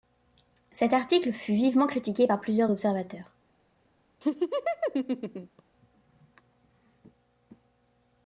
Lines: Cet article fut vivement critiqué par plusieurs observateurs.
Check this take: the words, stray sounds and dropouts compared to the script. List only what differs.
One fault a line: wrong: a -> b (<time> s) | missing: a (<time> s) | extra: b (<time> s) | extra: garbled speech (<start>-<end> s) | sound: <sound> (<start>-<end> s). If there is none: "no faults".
sound: laugh (4.2-5.6 s)